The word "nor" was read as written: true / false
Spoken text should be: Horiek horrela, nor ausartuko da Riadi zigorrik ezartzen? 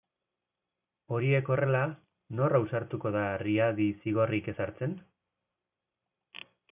true